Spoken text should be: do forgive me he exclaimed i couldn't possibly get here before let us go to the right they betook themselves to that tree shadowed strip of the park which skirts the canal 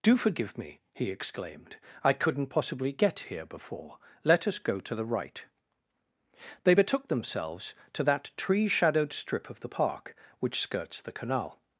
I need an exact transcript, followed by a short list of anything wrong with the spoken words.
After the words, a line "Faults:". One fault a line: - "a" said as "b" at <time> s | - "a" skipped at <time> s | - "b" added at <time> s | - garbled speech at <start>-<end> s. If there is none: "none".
do forgive me he exclaimed i couldn't possibly get here before let us go to the right they betook themselves to that tree shadowed strip of the park which skirts the canal
Faults:
none